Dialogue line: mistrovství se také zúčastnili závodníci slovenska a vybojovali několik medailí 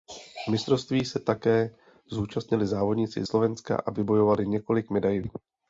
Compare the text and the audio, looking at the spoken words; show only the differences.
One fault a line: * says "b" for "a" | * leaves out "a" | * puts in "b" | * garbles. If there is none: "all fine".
all fine